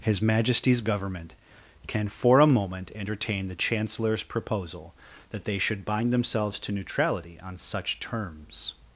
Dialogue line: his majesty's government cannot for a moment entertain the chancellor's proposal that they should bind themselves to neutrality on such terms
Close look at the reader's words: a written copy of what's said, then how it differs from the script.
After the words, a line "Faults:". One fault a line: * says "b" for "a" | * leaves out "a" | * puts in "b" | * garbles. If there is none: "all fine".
his majesty's government can for a moment entertain the chancellor's proposal that they should bind themselves to neutrality on such terms
Faults:
* says "can" for "cannot"